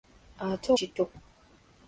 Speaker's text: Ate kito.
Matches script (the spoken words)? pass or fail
pass